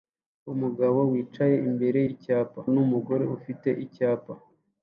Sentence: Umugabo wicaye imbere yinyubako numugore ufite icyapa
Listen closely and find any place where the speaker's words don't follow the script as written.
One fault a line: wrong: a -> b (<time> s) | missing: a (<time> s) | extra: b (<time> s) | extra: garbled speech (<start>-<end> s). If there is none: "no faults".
wrong: yinyubako -> icyapa (2.1 s)